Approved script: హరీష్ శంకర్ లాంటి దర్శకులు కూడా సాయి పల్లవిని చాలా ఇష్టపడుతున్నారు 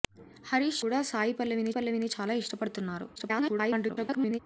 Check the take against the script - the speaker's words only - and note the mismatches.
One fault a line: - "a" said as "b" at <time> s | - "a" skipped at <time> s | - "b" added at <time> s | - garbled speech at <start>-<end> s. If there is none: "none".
- "శంకర్ లాంటి దర్శకులు" skipped at 0.8 s
- "పల్లవిని" added at 1.7 s
- garbled speech at 3.2-4.4 s